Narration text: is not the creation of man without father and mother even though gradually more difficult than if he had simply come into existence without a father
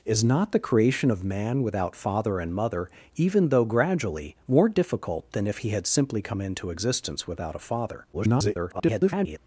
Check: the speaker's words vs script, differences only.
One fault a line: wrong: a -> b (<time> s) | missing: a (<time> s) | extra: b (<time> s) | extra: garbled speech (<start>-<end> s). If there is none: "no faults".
extra: garbled speech (8.1-9.4 s)